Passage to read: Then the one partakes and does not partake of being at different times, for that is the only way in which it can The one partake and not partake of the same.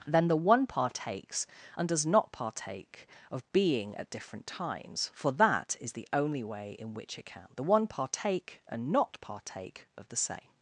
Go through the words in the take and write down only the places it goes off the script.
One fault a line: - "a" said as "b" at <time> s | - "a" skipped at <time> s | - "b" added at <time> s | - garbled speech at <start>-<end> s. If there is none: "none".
none